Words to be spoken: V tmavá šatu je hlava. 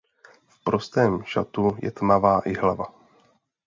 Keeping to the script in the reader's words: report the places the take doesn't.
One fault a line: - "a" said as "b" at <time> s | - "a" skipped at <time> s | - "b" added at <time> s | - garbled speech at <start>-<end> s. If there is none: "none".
- "tmavá" said as "prostém" at 0.6 s
- "tmavá i" added at 1.9 s